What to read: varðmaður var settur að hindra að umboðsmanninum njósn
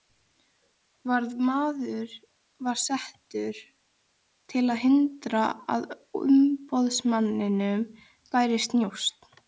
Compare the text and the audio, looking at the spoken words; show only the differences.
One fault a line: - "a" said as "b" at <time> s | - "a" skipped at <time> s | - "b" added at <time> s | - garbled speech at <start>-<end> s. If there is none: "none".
- "til" added at 4.5 s
- "bærist" added at 8.3 s